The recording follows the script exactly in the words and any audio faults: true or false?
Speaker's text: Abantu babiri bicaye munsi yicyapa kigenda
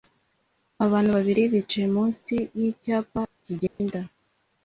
false